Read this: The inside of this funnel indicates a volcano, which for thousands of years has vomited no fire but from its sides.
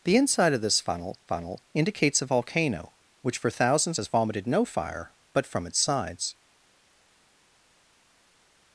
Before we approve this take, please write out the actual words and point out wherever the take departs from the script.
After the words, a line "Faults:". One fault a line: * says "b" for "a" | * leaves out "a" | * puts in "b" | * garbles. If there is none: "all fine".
The inside of this funnel funnel indicates a volcano, which for thousands has vomited no fire but from its sides.
Faults:
* puts in "funnel"
* leaves out "of years"